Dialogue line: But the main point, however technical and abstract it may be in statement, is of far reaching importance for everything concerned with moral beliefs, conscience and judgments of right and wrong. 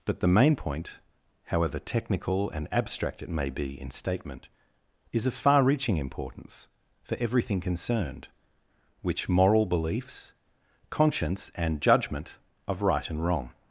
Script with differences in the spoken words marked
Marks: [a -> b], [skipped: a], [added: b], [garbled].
But the main point, however technical and abstract it may be in statement, is of far reaching importance for everything concerned [with -> which] moral beliefs, conscience and [judgments -> judgment] of right and wrong.